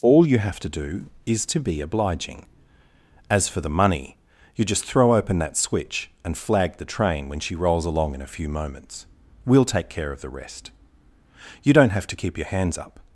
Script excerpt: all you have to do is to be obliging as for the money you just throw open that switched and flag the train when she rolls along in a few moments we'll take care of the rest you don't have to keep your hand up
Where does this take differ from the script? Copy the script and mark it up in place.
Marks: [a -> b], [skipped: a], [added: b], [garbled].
all you have to do is to be obliging as for the money you just throw open that [switched -> switch] and flag the train when she rolls along in a few moments we'll take care of the rest you don't have to keep your [hand -> hands] up